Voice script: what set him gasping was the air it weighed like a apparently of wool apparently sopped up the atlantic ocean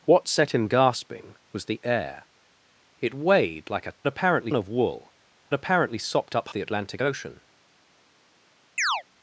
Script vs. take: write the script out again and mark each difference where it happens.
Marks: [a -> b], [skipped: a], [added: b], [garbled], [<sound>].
what set him gasping was the air it weighed like a apparently of wool apparently sopped up the atlantic ocean [chirp]